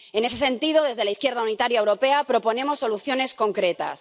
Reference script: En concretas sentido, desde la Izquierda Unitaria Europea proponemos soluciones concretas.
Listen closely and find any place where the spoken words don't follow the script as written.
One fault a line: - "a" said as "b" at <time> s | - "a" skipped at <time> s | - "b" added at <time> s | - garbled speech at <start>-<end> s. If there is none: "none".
- "concretas" said as "ese" at 0.2 s